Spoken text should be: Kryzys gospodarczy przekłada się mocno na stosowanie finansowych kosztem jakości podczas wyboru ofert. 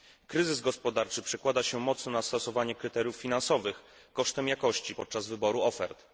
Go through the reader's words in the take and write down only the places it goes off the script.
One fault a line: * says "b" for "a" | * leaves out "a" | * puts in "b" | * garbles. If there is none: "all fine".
* puts in "kryteriów"